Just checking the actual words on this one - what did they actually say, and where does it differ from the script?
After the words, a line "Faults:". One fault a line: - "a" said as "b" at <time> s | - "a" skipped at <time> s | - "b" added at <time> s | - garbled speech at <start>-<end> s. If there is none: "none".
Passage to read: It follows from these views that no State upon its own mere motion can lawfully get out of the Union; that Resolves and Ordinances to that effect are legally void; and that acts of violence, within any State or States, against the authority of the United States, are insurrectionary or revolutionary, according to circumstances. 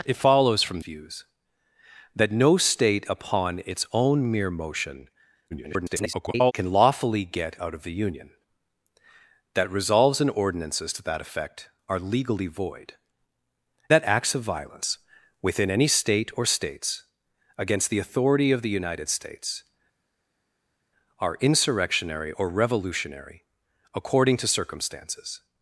It follows from views that no State upon its own mere motion [garbled] can lawfully get out of the Union; that Resolves and Ordinances to that effect are legally void; that acts of violence, within any State or States, against the authority of the United States, are insurrectionary or revolutionary, according to circumstances.
Faults:
- "these" skipped at 0.8 s
- garbled speech at 5.5-6.5 s
- "and" skipped at 12.9 s